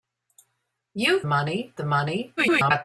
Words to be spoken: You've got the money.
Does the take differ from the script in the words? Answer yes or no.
yes